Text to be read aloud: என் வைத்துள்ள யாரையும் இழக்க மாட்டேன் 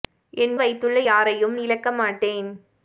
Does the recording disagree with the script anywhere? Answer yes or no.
no